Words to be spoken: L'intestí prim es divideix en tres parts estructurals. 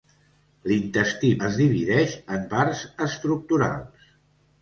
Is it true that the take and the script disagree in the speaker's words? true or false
true